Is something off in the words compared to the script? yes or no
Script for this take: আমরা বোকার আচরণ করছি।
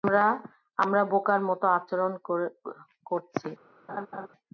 yes